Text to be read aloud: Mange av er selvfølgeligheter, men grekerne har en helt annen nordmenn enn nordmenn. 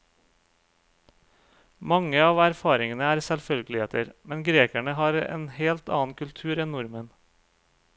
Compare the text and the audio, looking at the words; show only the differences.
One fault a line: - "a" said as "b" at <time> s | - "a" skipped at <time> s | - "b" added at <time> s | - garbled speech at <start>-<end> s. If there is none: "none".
- "erfaringene" added at 2.5 s
- "nordmenn" said as "kultur" at 6.2 s